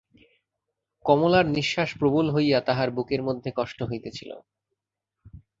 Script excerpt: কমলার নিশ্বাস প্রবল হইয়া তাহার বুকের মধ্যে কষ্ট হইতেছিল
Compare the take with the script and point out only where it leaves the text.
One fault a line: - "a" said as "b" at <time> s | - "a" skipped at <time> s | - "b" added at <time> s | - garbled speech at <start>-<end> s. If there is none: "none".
none